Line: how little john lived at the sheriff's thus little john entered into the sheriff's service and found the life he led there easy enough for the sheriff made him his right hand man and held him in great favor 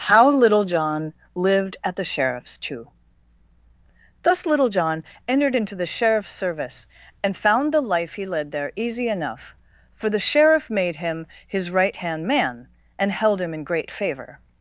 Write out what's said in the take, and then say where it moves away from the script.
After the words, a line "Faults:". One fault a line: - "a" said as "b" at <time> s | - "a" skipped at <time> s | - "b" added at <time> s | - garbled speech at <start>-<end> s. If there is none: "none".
how little john lived at the sheriff's too thus little john entered into the sheriff's service and found the life he led there easy enough for the sheriff made him his right hand man and held him in great favor
Faults:
- "too" added at 2.6 s